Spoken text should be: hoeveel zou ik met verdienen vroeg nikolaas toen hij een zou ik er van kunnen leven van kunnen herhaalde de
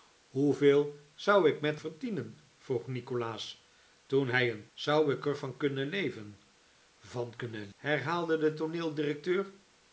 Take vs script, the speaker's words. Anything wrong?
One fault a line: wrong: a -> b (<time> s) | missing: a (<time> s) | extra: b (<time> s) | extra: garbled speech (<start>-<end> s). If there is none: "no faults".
no faults